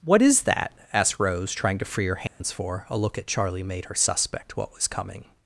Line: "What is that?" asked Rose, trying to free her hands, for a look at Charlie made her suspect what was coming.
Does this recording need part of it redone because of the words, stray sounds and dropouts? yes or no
yes